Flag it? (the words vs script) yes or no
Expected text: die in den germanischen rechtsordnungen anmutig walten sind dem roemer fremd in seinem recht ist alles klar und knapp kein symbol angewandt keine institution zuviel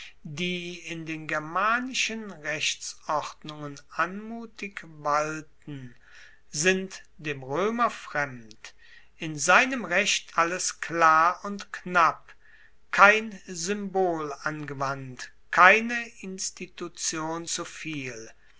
yes